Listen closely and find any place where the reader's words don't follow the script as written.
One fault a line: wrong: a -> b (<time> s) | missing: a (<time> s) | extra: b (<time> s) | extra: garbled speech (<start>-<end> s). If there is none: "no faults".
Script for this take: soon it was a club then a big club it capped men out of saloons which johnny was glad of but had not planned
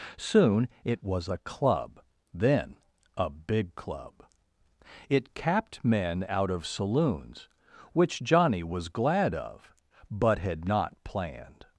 no faults